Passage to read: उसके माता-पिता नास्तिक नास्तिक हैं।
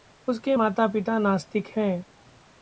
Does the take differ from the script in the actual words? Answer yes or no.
yes